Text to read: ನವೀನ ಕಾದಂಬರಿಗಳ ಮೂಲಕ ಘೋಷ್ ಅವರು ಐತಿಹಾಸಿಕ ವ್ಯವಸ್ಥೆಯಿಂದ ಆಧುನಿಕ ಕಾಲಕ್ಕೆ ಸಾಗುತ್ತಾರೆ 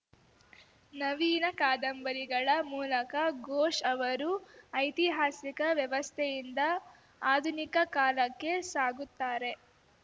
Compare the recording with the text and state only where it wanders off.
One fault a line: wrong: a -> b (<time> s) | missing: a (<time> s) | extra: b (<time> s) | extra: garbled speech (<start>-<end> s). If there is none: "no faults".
no faults